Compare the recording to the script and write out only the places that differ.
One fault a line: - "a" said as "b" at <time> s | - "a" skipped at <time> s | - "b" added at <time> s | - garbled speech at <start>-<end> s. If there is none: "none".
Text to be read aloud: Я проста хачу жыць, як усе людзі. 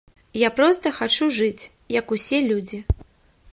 none